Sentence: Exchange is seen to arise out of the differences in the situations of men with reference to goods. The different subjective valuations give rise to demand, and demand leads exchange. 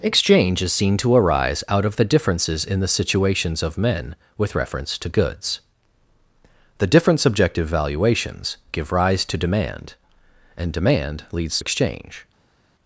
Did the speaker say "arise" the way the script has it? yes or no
yes